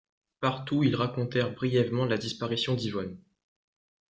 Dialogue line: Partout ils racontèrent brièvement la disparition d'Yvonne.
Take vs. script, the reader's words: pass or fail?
pass